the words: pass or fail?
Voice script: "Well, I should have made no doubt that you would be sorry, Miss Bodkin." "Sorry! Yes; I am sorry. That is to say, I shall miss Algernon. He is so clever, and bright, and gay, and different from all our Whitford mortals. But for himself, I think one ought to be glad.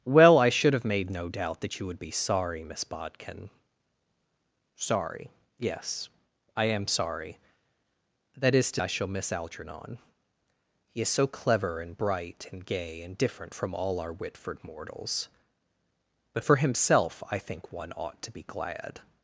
fail